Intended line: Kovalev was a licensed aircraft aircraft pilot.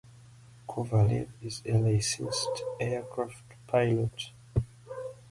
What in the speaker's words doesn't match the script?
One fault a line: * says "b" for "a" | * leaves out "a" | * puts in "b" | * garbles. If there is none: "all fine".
* says "is" for "was"
* leaves out "aircraft"